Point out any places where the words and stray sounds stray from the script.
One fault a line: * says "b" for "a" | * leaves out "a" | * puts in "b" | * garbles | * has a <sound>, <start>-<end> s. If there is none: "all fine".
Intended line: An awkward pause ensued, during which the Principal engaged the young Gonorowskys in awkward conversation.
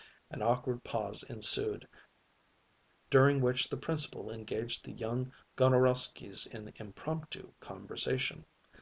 * says "impromptu" for "awkward"